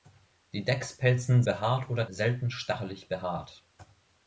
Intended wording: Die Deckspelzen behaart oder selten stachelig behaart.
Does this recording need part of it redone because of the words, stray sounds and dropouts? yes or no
no